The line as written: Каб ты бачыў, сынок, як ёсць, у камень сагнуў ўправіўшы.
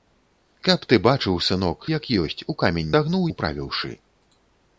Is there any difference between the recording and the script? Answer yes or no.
no